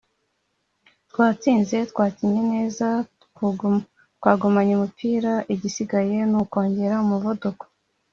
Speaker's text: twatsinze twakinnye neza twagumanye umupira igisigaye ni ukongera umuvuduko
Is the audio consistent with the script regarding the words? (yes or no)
yes